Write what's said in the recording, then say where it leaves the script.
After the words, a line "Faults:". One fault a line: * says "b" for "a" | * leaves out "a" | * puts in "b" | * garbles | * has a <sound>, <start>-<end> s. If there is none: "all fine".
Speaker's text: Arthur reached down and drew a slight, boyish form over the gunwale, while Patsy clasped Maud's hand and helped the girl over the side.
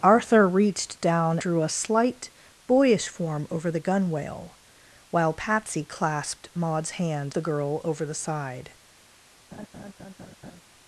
Arthur reached down drew a slight, boyish form over the gunwale, while Patsy clasped Maud's hand the girl over the side.
Faults:
* leaves out "and"
* leaves out "and helped"
* has a laugh, 9.5-10.6 s